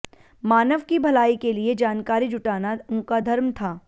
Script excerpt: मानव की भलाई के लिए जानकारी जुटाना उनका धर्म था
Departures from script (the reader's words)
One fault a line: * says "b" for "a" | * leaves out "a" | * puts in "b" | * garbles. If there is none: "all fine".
all fine